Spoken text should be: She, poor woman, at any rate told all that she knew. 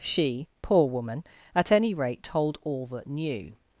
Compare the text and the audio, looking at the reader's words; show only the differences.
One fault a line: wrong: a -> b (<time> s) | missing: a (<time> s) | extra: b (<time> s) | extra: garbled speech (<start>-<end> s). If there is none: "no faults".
missing: she (3.0 s)